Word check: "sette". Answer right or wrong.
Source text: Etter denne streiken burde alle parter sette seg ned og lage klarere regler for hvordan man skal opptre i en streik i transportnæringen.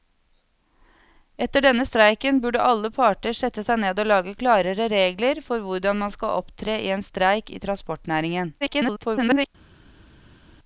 right